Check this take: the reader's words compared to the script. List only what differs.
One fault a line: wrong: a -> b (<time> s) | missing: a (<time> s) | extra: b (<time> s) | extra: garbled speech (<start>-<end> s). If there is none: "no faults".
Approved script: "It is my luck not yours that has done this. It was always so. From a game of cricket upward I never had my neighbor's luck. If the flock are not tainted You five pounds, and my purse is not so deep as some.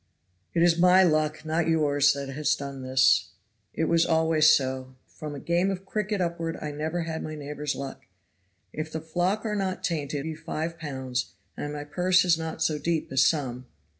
no faults